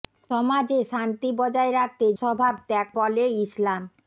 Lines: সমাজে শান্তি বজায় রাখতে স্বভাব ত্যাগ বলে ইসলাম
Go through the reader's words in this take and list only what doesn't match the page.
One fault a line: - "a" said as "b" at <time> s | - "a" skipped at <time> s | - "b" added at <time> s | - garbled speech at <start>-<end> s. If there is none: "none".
none